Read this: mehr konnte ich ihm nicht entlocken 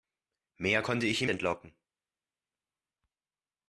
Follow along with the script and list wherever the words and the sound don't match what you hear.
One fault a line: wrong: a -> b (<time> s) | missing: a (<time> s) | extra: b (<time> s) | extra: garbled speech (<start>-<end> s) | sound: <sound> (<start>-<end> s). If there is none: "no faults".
missing: nicht (1.3 s)